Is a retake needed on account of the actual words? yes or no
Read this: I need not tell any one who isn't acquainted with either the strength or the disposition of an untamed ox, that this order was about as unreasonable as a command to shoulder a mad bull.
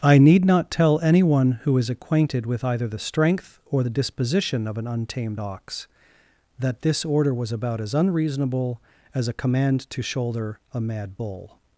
yes